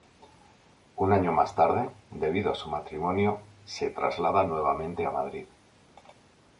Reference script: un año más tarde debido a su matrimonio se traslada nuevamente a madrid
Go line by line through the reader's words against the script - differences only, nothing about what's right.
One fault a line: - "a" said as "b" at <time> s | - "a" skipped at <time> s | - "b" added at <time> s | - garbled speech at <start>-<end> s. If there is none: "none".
none